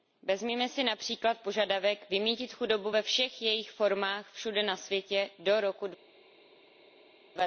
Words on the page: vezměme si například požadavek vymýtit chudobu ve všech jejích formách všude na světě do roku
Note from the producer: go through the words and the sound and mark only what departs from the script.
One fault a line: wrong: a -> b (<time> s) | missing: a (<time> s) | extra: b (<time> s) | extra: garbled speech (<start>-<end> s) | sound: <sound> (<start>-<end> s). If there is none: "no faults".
no faults